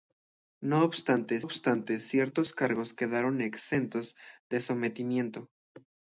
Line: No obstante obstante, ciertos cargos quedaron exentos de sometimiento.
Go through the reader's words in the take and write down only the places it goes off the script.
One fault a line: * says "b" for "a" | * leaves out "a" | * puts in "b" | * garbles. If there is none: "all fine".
all fine